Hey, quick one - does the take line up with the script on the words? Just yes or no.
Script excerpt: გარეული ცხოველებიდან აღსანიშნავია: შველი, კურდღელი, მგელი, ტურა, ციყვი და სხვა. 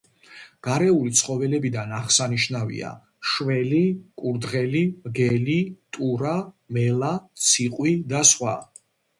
no